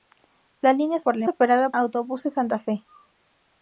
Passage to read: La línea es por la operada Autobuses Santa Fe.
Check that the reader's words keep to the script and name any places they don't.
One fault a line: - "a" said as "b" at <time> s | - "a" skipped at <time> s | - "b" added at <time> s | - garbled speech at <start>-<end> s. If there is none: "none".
none